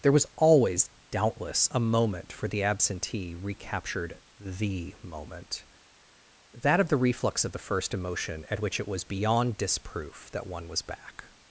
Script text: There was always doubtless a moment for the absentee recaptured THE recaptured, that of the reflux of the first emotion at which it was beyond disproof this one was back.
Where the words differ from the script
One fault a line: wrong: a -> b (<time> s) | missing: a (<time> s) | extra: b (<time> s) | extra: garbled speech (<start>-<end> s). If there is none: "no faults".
wrong: recaptured -> moment (5.0 s)
wrong: this -> that (10.3 s)